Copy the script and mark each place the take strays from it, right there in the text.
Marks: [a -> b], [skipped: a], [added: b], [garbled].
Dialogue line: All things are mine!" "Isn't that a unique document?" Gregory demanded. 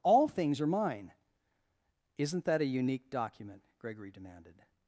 All things are mine!" "Isn't that a unique document?" Gregory demanded.